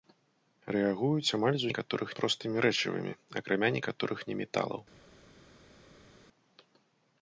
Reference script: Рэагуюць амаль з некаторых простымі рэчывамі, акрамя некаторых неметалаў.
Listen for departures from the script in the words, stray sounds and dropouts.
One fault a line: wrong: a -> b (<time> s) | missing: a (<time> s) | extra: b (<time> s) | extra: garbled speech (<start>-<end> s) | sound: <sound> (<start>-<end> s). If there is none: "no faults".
no faults